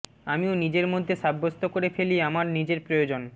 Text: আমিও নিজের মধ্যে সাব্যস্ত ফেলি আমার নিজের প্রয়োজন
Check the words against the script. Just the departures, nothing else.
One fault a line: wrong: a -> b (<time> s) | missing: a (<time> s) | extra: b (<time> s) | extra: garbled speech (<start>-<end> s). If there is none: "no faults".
extra: করে (1.6 s)